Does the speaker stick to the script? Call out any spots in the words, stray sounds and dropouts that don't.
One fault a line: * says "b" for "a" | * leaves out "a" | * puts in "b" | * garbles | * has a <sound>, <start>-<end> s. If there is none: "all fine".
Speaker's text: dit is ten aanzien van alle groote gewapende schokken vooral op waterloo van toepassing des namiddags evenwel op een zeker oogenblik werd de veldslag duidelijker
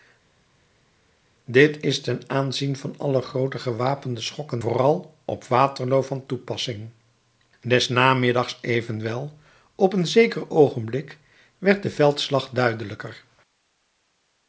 all fine